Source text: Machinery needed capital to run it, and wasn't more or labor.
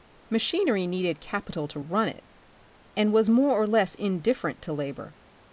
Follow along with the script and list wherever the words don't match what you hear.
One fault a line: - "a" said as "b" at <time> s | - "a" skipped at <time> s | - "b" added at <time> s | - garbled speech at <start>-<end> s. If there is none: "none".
- "wasn't" said as "was" at 3.1 s
- "less indifferent to" added at 3.7 s